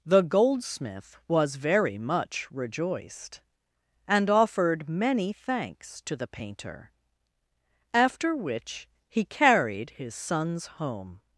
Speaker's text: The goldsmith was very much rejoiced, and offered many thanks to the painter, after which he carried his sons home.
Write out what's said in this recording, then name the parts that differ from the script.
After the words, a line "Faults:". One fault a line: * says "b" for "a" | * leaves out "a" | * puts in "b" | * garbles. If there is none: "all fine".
The goldsmith was very much rejoiced, and offered many thanks to the painter, after which he carried his sons home.
Faults:
all fine